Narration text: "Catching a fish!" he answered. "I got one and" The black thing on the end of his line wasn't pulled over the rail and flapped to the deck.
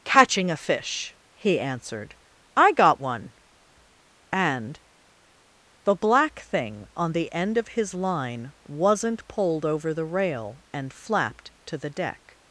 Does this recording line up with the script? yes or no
yes